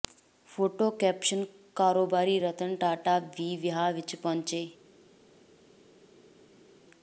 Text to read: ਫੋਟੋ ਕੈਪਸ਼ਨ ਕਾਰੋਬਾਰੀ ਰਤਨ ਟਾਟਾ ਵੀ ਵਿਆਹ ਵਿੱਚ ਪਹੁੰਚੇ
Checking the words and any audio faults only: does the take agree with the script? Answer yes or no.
yes